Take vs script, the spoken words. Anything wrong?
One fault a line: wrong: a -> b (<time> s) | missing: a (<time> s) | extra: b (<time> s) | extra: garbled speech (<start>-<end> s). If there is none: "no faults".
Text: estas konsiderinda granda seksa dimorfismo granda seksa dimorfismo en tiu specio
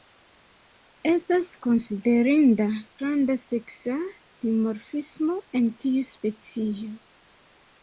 missing: granda seksa dimorfismo (5.4 s)